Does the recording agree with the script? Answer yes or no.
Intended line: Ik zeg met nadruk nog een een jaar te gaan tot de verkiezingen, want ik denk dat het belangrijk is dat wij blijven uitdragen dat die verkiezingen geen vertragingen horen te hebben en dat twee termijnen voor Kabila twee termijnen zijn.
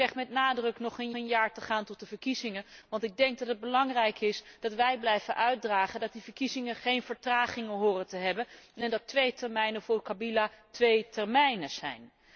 yes